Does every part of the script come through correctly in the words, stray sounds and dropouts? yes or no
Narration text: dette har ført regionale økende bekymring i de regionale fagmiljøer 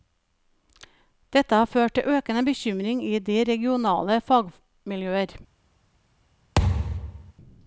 no